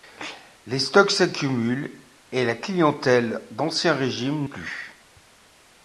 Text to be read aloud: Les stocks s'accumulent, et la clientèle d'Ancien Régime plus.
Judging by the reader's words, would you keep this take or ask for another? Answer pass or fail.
pass